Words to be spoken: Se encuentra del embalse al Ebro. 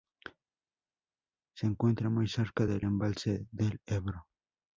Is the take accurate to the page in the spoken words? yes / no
no